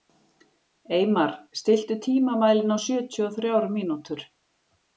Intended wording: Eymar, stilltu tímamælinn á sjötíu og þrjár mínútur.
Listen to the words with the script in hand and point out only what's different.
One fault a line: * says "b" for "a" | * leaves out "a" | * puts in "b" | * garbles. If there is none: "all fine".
all fine